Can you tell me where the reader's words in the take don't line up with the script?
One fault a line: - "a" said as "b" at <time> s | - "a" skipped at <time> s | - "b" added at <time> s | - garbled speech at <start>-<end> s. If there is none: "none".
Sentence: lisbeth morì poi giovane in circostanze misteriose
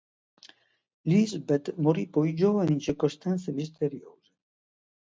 none